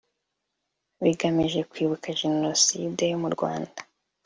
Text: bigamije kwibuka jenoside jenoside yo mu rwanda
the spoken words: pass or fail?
fail